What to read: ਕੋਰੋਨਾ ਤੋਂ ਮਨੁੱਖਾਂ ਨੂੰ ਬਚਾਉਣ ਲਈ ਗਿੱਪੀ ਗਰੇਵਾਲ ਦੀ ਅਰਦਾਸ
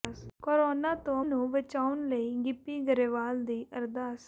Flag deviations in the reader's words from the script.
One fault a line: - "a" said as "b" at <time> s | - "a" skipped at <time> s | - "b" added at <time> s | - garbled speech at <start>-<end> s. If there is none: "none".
- "ਮਨੁੱਖਾਂ" skipped at 1.2 s